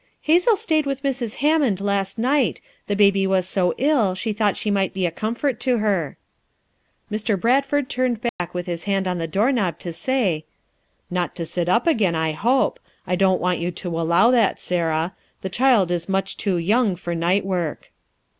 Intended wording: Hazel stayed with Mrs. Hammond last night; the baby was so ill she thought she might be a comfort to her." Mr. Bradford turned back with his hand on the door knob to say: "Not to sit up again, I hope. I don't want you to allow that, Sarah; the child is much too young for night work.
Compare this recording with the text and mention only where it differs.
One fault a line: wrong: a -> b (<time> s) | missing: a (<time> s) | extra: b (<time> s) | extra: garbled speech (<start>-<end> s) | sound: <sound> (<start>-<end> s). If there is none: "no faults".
sound: dropout (8.3-8.4 s)